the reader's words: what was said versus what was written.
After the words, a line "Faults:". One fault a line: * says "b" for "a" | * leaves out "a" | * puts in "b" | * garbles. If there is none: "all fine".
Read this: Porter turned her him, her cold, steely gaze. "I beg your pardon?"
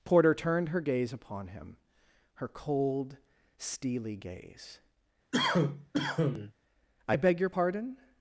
Porter turned her gaze upon him, her cold, steely gaze. "I beg your pardon?"
Faults:
* puts in "gaze upon"